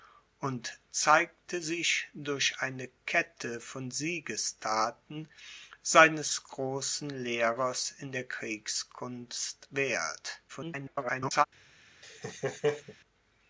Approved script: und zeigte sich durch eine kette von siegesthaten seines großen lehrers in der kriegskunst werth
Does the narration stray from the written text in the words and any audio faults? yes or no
yes